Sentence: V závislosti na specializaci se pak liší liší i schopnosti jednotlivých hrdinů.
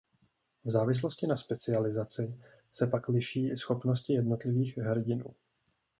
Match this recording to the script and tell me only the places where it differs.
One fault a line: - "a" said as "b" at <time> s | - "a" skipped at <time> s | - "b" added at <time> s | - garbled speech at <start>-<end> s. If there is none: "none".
- "liší" skipped at 3.5 s